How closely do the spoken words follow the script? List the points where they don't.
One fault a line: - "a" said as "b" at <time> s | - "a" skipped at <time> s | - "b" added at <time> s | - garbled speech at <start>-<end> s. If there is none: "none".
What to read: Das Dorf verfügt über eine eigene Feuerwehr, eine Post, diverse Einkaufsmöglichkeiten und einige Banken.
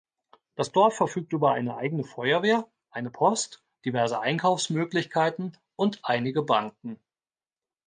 none